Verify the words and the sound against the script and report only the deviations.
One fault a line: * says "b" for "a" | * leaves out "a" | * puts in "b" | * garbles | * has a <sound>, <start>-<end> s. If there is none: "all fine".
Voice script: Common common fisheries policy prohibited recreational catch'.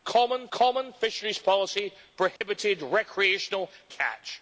* has a dropout, 2.4-2.4 s